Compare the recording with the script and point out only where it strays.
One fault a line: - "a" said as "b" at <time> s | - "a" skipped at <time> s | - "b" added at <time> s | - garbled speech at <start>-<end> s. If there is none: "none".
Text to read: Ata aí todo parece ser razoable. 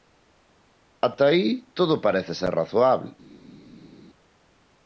none